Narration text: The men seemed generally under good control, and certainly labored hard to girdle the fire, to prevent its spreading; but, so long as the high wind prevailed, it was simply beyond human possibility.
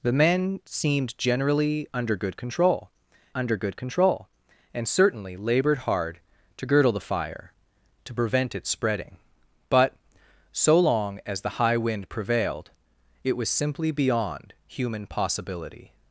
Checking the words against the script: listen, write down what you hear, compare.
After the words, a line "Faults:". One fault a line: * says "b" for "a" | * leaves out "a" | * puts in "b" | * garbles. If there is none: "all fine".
The men seemed generally under good control under good control, and certainly labored hard to girdle the fire, to prevent its spreading; but, so long as the high wind prevailed, it was simply beyond human possibility.
Faults:
* puts in "under good control"